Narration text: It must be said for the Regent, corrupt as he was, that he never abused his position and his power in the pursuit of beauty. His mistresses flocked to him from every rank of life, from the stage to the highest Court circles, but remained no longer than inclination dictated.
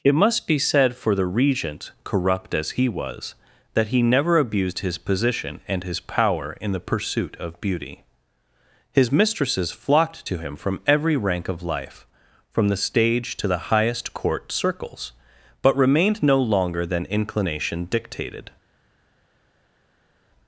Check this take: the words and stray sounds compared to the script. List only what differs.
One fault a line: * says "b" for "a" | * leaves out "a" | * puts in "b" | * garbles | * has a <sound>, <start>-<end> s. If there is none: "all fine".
all fine